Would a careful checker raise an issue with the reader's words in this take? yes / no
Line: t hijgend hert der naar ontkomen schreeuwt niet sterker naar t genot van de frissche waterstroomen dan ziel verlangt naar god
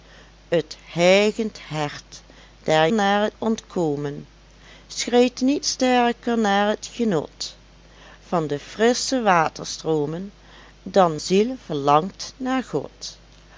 no